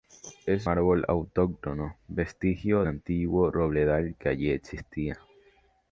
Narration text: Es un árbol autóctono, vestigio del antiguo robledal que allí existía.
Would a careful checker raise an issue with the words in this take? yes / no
yes